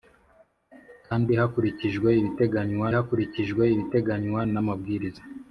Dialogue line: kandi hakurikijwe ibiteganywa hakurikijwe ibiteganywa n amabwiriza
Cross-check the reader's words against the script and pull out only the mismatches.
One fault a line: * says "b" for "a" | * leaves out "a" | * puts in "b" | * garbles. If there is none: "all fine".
all fine